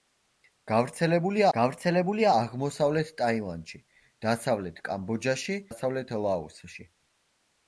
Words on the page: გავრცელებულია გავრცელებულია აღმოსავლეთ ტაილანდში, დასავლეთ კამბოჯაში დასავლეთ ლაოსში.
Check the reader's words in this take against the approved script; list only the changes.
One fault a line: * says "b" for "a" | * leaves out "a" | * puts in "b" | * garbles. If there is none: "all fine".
all fine